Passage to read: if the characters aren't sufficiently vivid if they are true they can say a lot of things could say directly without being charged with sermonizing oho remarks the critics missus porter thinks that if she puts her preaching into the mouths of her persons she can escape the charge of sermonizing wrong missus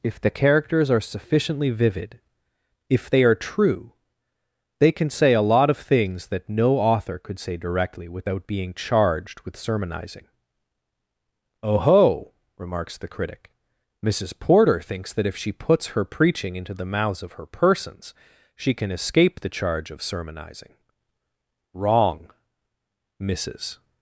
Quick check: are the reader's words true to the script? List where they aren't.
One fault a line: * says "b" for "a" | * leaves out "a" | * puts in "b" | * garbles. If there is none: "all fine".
* says "are" for "aren't"
* puts in "that no author"
* says "critic" for "critics"